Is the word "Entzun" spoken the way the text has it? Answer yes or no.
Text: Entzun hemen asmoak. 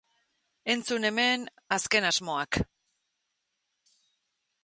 yes